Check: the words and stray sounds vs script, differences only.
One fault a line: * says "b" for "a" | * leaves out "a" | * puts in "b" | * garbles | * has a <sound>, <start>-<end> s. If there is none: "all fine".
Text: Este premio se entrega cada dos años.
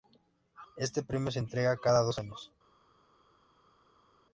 all fine